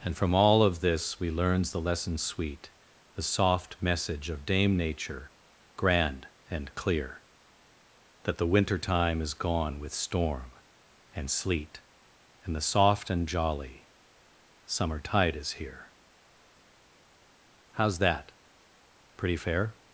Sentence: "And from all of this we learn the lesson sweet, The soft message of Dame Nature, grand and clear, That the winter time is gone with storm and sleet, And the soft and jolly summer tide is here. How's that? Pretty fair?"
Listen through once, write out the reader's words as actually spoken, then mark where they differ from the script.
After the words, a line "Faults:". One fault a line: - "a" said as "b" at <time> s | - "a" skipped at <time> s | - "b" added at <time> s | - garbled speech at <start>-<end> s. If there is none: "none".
"And from all of this we learns the lesson sweet, The soft message of Dame Nature, grand and clear, That the winter time is gone with storm and sleet, And the soft and jolly summer tide is here. How's that? Pretty fair?"
Faults:
- "learn" said as "learns" at 1.3 s